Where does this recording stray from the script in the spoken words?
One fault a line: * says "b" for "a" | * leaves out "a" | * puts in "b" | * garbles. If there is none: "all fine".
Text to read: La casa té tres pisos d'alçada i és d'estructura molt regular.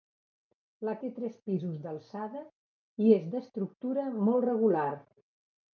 * leaves out "casa"